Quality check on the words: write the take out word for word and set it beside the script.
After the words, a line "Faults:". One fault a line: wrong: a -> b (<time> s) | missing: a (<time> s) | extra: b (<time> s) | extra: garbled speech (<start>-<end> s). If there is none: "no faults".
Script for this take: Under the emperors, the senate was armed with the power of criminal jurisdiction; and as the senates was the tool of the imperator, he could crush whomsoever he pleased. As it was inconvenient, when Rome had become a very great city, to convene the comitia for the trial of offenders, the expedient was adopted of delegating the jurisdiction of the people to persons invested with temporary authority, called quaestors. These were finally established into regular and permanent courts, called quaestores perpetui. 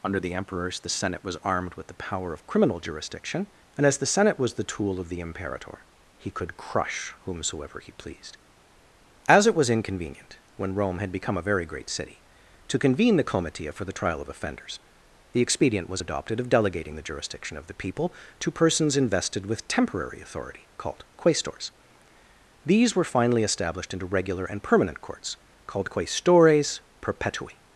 Under the emperors, the senate was armed with the power of criminal jurisdiction; and as the senate was the tool of the imperator, he could crush whomsoever he pleased. As it was inconvenient, when Rome had become a very great city, to convene the comitia for the trial of offenders, the expedient was adopted of delegating the jurisdiction of the people to persons invested with temporary authority, called quaestors. These were finally established into regular and permanent courts, called quaestores perpetui.
Faults:
wrong: senates -> senate (4.1 s)